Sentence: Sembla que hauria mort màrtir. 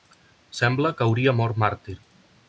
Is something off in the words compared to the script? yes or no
no